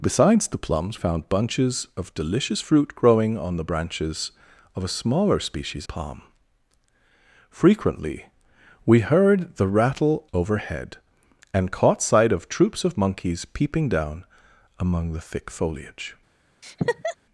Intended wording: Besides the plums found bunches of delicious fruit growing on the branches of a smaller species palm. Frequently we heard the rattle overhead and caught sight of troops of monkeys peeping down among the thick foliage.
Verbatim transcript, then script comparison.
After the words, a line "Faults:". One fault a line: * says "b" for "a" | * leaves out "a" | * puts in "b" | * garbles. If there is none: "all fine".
Besides the plums found bunches of delicious fruit growing on the branches of a smaller species palm. Frequently we heard the rattle overhead and caught sight of troops of monkeys peeping down among the thick foliage.
Faults:
all fine